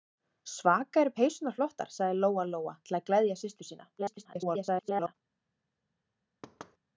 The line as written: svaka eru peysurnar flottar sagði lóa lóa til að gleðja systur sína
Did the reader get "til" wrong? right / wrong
right